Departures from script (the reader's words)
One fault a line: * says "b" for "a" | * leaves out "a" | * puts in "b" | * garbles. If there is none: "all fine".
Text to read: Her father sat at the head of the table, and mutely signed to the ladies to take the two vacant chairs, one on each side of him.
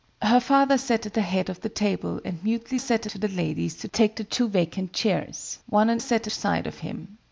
* says "sat" for "signed"
* says "sat" for "each"